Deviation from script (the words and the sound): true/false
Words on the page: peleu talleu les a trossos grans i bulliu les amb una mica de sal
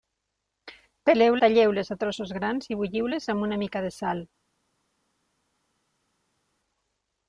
false